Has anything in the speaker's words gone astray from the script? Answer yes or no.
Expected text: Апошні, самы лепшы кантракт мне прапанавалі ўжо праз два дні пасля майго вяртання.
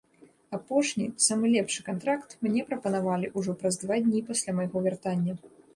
no